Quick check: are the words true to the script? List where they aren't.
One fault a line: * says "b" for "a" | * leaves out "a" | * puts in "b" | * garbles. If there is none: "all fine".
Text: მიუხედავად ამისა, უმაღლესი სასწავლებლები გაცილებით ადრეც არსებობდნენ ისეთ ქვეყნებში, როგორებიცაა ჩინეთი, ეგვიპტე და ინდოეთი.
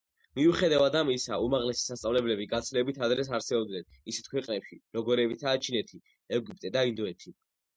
all fine